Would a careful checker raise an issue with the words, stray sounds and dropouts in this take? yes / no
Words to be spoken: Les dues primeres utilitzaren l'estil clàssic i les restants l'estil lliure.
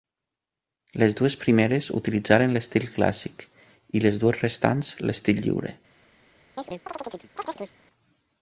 yes